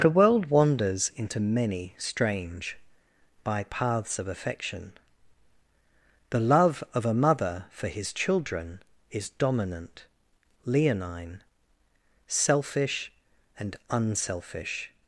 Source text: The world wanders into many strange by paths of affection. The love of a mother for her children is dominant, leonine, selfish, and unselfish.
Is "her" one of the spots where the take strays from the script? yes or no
yes